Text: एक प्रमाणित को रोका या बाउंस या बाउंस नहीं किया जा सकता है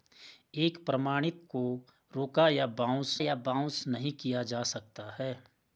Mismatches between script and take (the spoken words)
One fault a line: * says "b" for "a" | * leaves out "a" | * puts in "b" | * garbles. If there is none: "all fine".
all fine